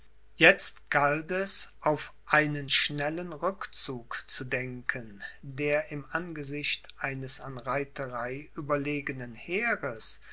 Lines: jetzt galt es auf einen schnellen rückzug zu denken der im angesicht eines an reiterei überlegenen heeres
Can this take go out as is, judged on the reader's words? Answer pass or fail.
pass